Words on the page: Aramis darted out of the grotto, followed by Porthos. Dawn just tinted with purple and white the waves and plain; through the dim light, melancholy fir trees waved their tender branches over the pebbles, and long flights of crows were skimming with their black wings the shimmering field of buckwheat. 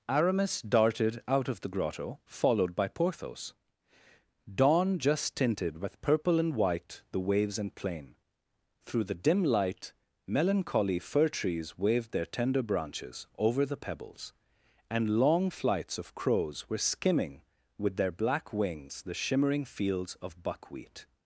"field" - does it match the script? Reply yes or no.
no